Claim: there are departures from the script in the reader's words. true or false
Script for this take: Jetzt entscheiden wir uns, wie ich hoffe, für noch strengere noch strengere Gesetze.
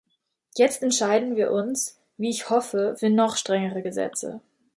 true